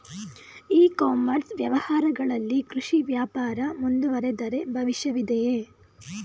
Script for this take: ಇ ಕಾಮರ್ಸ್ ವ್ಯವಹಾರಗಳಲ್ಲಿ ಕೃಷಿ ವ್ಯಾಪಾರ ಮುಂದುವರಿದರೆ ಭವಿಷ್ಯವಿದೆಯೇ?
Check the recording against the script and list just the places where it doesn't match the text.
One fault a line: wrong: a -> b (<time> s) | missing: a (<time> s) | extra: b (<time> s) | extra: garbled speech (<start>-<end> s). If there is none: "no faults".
no faults